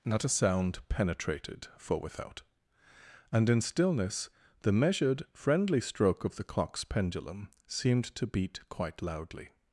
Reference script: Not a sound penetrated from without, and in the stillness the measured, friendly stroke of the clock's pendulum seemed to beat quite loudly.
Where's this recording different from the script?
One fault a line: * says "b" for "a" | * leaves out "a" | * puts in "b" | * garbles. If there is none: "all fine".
* says "for" for "from"
* leaves out "the"